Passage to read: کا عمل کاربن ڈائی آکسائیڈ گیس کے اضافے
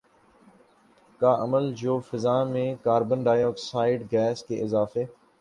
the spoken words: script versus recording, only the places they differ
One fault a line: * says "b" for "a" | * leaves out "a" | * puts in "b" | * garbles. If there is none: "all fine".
* puts in "جو فضا میں"